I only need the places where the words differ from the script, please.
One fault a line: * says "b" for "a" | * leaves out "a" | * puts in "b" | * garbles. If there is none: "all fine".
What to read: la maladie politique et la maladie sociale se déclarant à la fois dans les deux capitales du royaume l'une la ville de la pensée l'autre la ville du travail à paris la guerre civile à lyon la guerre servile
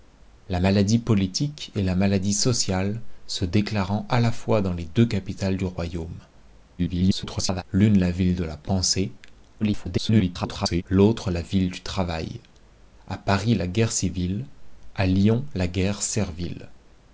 * garbles
* garbles